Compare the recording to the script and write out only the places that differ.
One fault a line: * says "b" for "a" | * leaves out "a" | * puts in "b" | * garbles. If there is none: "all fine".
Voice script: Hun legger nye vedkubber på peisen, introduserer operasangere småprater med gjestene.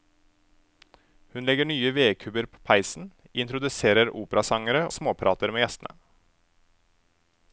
all fine